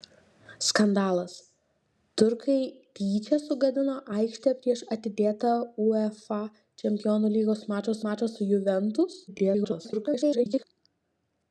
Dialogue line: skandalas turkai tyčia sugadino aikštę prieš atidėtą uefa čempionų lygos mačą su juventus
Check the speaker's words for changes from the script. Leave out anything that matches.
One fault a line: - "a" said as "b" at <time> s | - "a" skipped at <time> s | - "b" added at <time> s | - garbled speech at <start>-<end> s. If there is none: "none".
- "mačą" added at 8.1 s
- garbled speech at 9.3-10.6 s